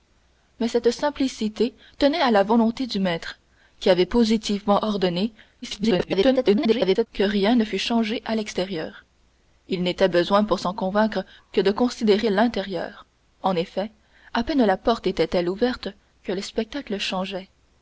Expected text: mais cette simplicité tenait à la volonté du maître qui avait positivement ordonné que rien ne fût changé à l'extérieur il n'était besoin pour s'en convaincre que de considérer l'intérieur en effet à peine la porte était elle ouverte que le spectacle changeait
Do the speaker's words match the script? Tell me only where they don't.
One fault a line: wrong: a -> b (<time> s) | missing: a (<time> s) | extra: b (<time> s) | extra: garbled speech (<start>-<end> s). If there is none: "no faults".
extra: garbled speech (5.6-7.1 s)